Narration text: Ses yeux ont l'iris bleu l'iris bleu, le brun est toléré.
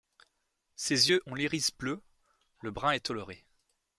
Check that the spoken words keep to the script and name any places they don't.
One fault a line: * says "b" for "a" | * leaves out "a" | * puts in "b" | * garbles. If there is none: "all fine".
* leaves out "l'iris bleu"